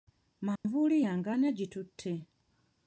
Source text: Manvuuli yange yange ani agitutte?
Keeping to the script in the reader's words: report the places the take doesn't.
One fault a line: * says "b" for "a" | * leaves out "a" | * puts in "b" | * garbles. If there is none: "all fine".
* leaves out "yange"